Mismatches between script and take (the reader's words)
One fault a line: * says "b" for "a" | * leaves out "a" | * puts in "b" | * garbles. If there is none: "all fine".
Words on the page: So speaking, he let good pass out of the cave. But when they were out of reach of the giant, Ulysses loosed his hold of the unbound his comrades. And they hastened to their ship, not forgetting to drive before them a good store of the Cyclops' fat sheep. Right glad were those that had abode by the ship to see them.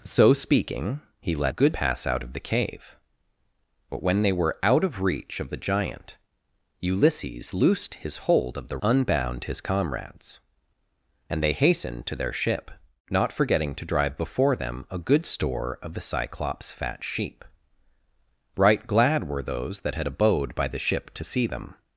all fine